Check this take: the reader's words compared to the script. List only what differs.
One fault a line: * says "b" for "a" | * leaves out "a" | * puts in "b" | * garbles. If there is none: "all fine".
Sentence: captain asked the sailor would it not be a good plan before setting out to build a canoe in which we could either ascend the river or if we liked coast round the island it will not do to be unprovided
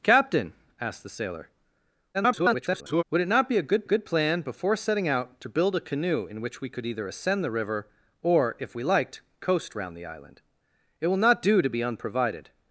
* garbles
* puts in "good"